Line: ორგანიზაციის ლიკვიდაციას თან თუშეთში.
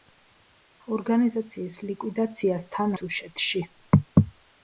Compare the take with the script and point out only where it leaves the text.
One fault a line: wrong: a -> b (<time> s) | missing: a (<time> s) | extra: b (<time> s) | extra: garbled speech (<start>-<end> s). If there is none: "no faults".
no faults